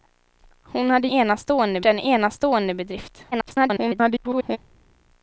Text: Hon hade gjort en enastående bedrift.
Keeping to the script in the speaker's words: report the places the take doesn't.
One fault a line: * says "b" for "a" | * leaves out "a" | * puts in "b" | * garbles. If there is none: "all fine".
* says "enastående" for "gjort"
* garbles